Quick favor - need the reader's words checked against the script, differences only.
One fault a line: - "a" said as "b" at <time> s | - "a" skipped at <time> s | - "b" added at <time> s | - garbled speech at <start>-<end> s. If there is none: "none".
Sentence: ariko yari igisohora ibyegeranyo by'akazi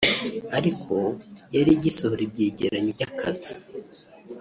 none